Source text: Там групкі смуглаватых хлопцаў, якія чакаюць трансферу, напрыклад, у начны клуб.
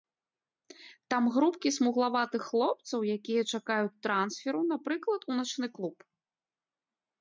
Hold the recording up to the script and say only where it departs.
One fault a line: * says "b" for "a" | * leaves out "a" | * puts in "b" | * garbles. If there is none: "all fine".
all fine